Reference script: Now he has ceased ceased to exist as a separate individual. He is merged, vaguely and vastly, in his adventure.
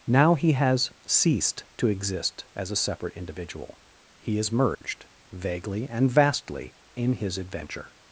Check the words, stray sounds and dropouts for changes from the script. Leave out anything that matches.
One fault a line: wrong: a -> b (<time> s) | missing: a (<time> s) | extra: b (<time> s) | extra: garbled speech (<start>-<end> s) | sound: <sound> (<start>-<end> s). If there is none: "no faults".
missing: ceased (1.6 s)
sound: dropout (4.7-4.8 s)